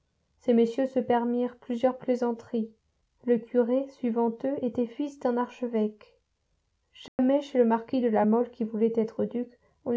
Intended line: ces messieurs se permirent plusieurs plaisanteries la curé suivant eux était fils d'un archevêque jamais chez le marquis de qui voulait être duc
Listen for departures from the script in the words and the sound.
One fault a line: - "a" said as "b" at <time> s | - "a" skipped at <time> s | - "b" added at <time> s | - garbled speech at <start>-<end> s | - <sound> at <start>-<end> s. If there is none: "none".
- "la" said as "le" at 3.2 s
- dropout at 7.1-7.2 s
- "la mole" added at 8.1 s